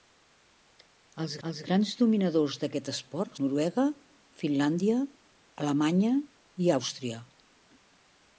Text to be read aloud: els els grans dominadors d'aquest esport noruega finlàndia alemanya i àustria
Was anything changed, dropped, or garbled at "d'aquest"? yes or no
no